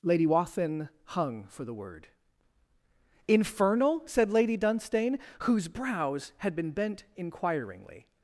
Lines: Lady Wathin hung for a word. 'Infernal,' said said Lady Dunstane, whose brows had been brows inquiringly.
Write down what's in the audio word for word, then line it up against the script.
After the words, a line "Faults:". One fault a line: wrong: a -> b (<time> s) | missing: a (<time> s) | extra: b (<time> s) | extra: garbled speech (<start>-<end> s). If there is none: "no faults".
Lady Wathin hung for the word. 'Infernal,' said Lady Dunstane, whose brows had been bent inquiringly.
Faults:
wrong: a -> the (1.6 s)
missing: said (4.3 s)
wrong: brows -> bent (6.7 s)